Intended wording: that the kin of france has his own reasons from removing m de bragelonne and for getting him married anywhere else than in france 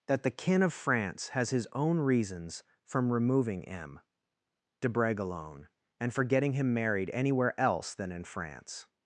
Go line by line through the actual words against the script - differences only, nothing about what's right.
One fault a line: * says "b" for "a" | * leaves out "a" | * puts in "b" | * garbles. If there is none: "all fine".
all fine